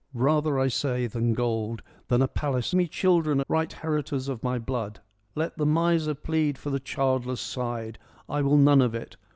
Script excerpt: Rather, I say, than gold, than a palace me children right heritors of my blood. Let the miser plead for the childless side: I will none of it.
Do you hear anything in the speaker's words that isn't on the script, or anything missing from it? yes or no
no